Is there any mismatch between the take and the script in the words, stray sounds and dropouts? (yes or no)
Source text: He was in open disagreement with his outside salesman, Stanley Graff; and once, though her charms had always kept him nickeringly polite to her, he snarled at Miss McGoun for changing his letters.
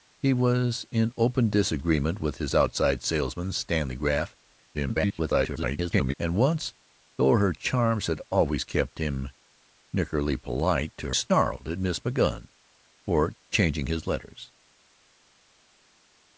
yes